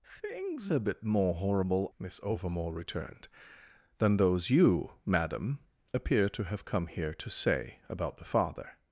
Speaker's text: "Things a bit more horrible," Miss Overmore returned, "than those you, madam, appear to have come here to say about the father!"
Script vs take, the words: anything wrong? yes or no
no